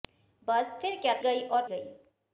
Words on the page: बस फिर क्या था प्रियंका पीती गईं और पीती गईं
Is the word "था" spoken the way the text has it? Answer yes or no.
no